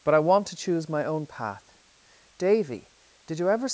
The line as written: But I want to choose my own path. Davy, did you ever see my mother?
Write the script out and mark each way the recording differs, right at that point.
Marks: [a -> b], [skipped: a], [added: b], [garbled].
But I want to choose my own path. Davy, did you ever [skipped: see my mother?]